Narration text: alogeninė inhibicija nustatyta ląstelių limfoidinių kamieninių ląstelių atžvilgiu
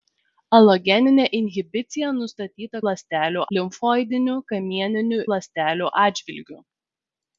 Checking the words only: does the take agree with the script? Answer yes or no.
yes